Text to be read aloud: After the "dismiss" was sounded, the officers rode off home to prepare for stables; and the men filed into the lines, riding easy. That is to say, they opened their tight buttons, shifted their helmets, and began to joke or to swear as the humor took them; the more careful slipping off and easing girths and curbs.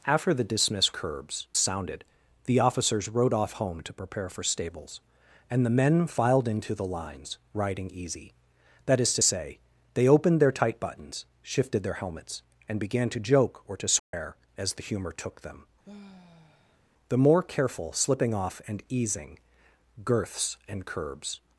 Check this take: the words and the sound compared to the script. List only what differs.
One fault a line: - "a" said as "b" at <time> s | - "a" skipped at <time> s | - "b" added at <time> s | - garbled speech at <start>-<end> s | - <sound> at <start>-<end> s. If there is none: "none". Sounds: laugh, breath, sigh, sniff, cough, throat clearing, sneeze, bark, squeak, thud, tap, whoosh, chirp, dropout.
- "was" said as "curbs" at 0.9 s
- dropout at 14.0-14.1 s
- sigh at 15.8-16.8 s